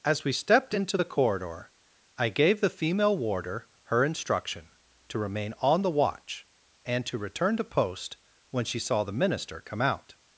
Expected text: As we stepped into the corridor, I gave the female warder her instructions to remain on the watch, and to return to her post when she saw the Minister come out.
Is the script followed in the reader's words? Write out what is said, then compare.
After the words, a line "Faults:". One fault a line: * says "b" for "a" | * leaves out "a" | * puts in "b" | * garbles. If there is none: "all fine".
As we stepped into the corridor, I gave the female warder her instruction to remain on the watch, and to return to post when she saw the Minister come out.
Faults:
* says "instruction" for "instructions"
* leaves out "her"